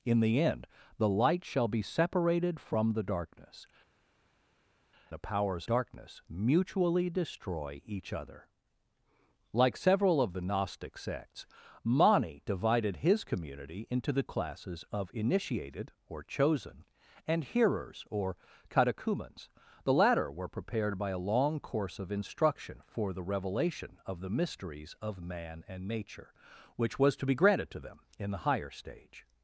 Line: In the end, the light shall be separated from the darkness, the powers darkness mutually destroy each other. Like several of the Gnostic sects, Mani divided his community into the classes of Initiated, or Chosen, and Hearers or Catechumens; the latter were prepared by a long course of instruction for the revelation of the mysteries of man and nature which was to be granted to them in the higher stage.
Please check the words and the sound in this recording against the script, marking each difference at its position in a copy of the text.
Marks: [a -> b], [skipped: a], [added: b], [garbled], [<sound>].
In the end, the light shall be separated from the darkness, the powers darkness mutually destroy each other. Like several of the Gnostic sects, Mani divided his community into the classes of Initiated, or Chosen, and Hearers or Catechumens; the latter were prepared by a long course of instruction for the revelation of the mysteries of man and nature which was to be granted to them in the higher stage.